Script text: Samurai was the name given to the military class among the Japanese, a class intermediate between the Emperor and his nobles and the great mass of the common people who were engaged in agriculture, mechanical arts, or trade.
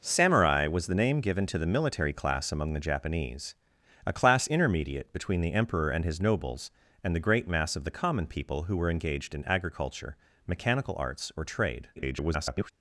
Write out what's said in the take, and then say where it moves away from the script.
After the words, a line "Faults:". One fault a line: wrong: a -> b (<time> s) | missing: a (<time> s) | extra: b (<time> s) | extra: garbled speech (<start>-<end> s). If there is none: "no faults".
Samurai was the name given to the military class among the Japanese, a class intermediate between the Emperor and his nobles and the great mass of the common people who were engaged in agriculture, mechanical arts, or trade. [garbled]
Faults:
extra: garbled speech (12.0-12.7 s)